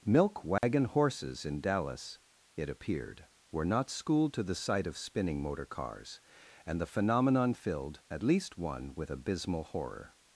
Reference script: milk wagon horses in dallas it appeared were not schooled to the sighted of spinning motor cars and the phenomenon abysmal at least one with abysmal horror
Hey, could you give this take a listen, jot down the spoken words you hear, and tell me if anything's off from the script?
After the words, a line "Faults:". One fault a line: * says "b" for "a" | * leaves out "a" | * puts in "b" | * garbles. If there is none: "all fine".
milk wagon horses in dallas it appeared were not schooled to the sight of spinning motor cars and the phenomenon filled at least one with abysmal horror
Faults:
* says "sight" for "sighted"
* says "filled" for "abysmal"